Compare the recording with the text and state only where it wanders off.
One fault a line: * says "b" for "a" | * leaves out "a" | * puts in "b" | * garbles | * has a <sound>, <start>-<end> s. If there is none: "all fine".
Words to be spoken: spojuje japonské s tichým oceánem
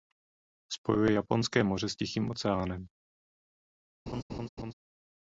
* puts in "moře"
* has a laugh, 4.1-4.7 s